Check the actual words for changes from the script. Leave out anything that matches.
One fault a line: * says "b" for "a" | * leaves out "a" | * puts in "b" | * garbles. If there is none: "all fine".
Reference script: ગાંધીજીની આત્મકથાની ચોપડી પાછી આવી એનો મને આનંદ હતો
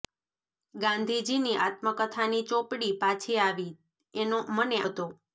* leaves out "આનંદ"